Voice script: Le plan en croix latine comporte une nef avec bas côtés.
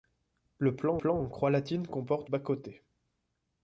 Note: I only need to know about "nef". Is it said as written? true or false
false